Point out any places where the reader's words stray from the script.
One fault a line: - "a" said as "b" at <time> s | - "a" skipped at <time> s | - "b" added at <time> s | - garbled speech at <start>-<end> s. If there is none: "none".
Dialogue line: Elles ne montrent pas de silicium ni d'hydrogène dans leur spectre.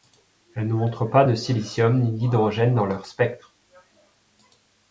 none